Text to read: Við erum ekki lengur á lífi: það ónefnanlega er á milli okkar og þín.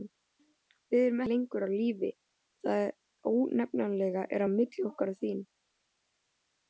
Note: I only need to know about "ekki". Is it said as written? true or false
false